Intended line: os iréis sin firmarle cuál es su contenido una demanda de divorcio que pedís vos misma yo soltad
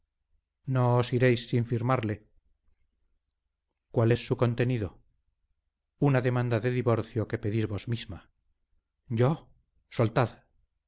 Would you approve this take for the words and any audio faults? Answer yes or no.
yes